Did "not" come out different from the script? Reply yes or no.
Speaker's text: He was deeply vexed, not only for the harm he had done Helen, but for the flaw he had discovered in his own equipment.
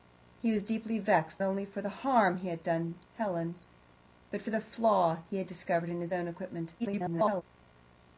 yes